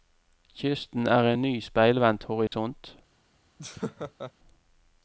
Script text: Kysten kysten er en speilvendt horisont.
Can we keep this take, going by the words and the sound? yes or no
no